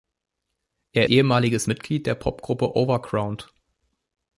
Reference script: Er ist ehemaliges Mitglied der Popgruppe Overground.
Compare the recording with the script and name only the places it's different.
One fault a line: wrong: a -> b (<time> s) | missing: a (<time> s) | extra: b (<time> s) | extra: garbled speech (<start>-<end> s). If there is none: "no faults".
missing: ist (1.1 s)